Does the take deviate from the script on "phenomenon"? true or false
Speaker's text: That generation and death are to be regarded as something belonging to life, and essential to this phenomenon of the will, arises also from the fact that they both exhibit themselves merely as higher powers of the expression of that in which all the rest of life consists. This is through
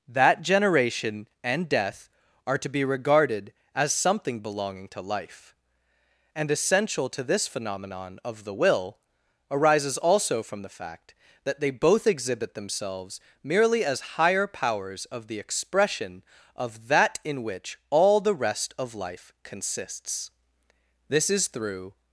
false